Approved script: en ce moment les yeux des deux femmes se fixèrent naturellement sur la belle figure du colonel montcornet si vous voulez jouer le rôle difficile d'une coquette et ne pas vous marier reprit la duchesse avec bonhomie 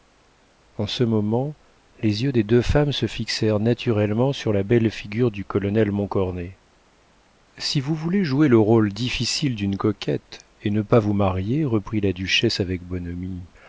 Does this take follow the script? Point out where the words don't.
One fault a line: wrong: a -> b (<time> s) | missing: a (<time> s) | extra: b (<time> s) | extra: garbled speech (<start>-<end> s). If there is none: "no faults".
no faults